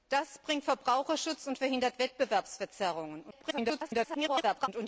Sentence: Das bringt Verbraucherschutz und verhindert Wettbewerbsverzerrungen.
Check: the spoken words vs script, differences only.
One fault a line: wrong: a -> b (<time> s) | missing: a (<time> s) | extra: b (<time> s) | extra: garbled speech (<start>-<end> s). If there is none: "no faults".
extra: garbled speech (3.3-4.7 s)